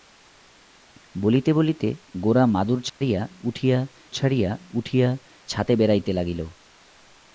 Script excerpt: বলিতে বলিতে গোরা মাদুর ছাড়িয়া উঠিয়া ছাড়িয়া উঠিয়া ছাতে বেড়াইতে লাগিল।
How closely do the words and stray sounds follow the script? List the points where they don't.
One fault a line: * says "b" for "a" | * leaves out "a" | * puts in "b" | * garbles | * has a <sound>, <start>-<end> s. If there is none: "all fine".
* has a dropout, 2.9-3.0 s